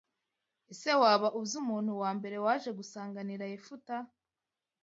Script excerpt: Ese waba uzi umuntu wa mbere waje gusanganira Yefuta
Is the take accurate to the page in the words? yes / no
yes